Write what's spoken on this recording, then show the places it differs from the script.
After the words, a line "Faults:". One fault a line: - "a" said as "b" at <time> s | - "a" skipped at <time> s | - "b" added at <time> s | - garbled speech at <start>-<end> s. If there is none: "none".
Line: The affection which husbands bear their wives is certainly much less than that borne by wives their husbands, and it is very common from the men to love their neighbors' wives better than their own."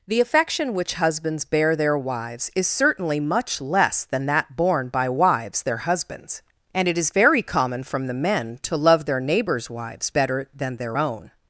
The affection which husbands bear their wives is certainly much less than that borne by wives their husbands, and it is very common from the men to love their neighbors' wives better than their own."
Faults:
none